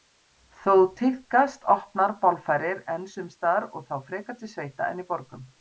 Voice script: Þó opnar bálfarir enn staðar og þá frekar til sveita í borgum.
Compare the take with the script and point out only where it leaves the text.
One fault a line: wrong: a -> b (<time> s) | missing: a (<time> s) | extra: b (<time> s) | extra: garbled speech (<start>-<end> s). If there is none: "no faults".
extra: tíðkast (1.0 s)
extra: sums (3.1 s)
extra: en (4.9 s)